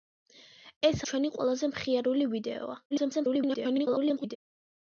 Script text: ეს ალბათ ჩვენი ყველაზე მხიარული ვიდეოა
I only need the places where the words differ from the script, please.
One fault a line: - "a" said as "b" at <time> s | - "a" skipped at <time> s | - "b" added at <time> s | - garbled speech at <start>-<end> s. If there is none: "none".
- "ალბათ" skipped at 1.0 s
- garbled speech at 2.9-4.4 s